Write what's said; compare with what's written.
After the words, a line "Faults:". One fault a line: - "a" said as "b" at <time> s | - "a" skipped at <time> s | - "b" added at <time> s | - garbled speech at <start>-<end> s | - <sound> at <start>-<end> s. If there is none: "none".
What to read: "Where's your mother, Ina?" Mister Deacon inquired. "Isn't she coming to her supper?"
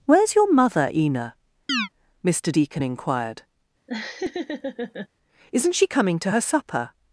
"Where's your mother, Ina?" Mister Deacon inquired. "Isn't she coming to her supper?"
Faults:
- chirp at 1.7-1.9 s
- laugh at 3.9-5.1 s